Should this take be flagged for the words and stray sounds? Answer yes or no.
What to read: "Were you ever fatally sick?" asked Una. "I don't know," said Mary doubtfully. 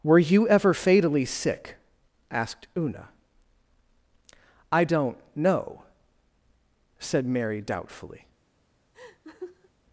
yes